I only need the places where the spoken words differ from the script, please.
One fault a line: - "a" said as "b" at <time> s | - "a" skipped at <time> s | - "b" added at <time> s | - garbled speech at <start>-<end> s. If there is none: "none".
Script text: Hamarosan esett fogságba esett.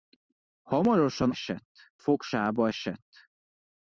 none